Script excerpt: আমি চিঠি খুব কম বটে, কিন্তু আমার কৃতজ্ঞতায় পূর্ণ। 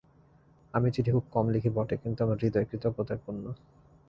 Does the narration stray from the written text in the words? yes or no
yes